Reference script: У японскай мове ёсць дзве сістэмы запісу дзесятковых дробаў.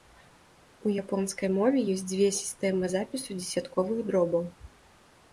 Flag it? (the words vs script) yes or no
no